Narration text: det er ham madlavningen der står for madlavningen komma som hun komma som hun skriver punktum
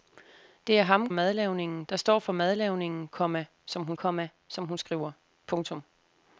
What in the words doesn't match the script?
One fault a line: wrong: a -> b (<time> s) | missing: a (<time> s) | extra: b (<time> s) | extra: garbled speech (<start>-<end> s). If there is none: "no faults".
no faults